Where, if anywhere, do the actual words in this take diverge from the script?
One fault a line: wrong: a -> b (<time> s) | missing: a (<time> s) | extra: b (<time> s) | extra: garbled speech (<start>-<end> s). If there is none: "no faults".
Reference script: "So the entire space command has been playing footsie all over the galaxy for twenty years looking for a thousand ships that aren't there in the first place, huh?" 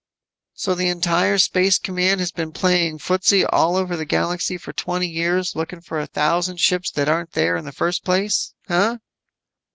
no faults